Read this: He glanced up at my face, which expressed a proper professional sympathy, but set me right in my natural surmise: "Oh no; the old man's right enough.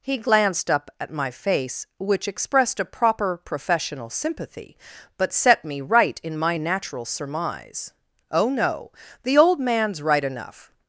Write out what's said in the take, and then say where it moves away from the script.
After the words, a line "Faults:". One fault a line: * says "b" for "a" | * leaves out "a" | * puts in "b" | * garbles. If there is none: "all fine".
He glanced up at my face, which expressed a proper professional sympathy, but set me right in my natural surmise: "Oh no; the old man's right enough.
Faults:
all fine